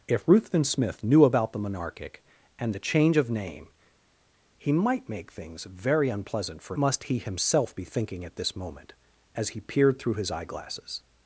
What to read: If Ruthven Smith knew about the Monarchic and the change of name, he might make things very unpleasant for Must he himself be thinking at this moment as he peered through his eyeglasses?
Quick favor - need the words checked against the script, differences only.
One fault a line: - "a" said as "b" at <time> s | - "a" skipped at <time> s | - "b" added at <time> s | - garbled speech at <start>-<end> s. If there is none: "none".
none